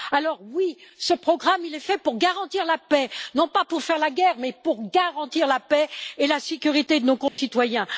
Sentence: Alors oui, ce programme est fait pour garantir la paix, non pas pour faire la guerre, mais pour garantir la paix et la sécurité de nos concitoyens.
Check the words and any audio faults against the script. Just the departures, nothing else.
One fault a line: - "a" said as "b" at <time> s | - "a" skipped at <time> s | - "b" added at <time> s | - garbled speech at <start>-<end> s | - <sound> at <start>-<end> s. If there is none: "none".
- dropout at 7.3-7.4 s